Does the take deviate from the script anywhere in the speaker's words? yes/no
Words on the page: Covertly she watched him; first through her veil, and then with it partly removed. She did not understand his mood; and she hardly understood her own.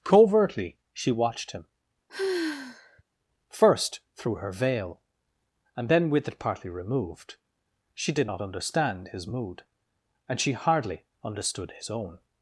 yes